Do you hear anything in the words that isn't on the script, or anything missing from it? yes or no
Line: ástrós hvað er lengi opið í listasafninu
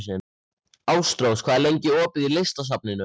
no